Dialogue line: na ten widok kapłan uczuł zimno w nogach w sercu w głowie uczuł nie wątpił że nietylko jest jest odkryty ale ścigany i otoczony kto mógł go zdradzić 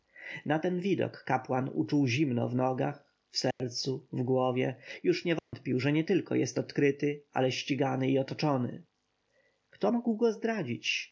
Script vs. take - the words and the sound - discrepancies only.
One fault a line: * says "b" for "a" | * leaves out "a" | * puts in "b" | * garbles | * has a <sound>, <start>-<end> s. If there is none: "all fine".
* has a dropout, 3.5-3.6 s
* says "już" for "uczuł"
* has a dropout, 5.4-5.5 s
* leaves out "jest"